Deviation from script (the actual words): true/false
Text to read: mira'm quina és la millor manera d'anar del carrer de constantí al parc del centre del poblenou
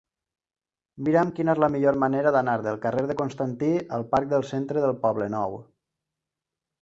false